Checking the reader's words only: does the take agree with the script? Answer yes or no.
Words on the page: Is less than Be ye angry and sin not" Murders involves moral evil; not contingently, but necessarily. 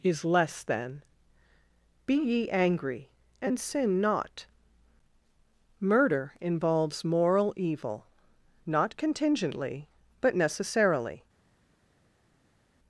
no